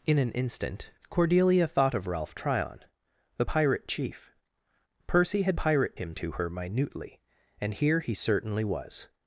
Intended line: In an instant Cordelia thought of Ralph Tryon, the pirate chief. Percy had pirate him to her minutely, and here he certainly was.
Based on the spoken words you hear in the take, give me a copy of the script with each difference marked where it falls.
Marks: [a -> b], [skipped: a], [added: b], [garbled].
In an instant Cordelia thought of Ralph Tryon, the pirate chief. Percy had pirate him to her minutely, and here he certainly was.